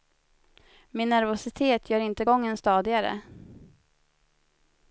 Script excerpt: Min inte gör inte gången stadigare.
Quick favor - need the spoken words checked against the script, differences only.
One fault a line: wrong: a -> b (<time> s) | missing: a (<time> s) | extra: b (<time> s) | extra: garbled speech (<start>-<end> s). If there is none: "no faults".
wrong: inte -> nervositet (1.1 s)